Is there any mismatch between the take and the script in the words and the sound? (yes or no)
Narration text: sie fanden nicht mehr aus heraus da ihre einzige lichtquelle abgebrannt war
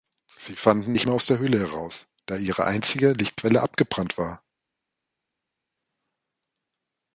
yes